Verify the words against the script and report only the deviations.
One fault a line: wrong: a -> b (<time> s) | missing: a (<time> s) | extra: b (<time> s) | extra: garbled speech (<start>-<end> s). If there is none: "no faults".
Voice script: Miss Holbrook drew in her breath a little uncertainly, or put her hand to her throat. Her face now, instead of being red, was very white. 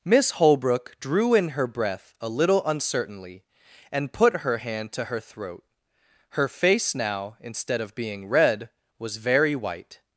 wrong: or -> and (3.9 s)